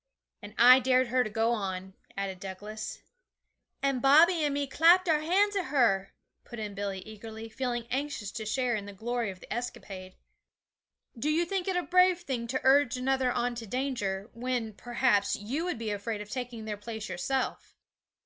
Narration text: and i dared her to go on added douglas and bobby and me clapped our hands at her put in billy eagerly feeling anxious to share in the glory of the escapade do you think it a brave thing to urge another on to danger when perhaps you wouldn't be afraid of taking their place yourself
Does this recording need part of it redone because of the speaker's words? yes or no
yes